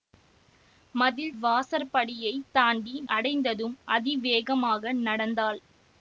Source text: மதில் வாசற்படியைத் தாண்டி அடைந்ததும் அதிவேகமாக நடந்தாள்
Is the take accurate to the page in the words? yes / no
yes